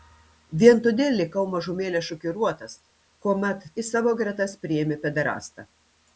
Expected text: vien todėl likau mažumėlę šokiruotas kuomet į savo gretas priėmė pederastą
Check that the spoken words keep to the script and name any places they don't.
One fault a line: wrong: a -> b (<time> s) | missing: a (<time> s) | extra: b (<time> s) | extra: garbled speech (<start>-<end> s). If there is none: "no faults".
no faults